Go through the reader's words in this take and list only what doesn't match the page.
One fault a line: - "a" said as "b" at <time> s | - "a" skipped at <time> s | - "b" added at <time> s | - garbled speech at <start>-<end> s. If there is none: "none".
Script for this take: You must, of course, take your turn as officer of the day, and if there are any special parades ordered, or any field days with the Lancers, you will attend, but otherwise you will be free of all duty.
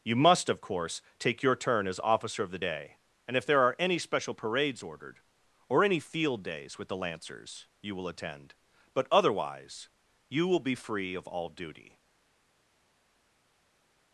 none